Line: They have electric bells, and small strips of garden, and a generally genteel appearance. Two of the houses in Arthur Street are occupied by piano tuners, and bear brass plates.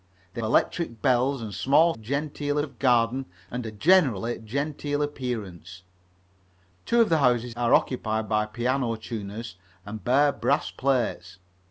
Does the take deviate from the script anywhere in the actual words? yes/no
yes